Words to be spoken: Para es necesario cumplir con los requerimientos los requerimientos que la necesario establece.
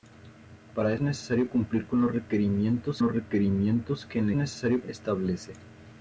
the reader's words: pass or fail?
pass